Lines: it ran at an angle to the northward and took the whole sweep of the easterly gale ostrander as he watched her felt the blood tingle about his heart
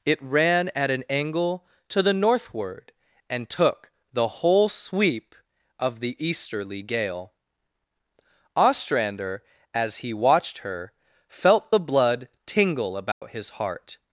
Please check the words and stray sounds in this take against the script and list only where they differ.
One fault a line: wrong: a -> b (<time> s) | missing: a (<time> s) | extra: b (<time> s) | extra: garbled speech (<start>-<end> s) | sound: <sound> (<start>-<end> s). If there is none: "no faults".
sound: dropout (13.1-13.2 s)